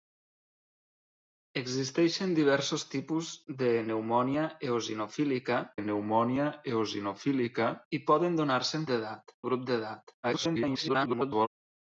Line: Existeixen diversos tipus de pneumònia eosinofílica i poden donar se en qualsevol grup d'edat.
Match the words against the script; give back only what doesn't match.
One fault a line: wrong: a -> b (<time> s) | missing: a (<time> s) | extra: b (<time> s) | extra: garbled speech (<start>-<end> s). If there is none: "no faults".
extra: pneumònia eosinofílica (5.8 s)
wrong: qualsevol -> d'edat (8.9 s)
extra: garbled speech (10.2-11.5 s)